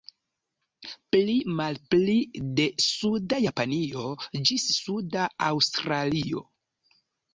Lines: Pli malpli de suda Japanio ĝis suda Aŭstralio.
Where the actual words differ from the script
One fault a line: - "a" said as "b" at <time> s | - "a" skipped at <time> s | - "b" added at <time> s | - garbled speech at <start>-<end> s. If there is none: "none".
none